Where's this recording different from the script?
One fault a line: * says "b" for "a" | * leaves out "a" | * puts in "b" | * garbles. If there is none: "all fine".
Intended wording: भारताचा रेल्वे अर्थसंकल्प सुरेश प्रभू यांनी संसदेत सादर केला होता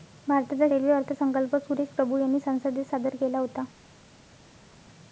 all fine